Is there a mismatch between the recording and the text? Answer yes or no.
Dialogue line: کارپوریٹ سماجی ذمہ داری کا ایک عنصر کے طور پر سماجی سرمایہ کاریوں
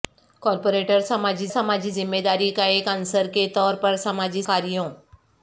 yes